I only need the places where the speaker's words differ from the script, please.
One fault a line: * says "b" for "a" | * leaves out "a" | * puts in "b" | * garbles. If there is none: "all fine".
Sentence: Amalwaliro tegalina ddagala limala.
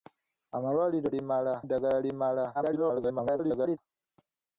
* says "limala" for "tegalina"
* garbles